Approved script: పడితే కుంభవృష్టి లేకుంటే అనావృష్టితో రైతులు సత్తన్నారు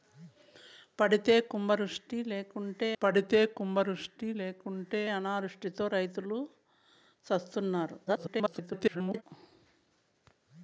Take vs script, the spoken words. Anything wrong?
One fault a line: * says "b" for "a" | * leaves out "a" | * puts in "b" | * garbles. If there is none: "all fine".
* puts in "పడితే కుంభవృష్టి లేకుంటే"
* garbles